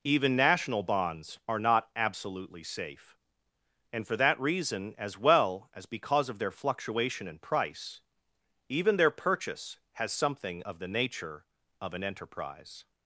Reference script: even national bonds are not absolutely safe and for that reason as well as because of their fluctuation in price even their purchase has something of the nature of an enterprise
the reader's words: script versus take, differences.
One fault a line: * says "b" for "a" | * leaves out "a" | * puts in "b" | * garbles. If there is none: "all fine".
all fine